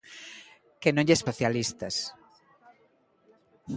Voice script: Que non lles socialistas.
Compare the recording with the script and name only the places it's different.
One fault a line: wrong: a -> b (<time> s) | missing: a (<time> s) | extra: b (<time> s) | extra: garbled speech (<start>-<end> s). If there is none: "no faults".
no faults